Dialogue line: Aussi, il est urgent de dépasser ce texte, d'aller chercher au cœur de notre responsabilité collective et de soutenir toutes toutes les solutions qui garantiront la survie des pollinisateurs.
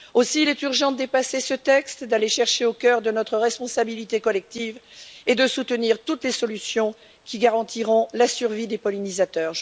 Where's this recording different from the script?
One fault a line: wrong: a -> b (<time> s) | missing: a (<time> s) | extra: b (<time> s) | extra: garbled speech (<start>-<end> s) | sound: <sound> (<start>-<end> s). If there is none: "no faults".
missing: toutes (6.2 s)